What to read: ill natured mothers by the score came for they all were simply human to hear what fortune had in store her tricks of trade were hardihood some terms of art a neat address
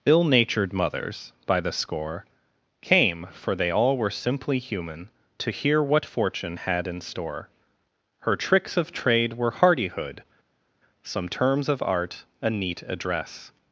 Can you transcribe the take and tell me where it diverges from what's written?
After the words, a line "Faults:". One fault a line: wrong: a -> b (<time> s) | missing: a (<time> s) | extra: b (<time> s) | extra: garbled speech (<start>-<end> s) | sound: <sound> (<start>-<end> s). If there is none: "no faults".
ill natured mothers by the score came for they all were simply human to hear what fortune had in store her tricks of trade were hardihood some terms of art a neat address
Faults:
no faults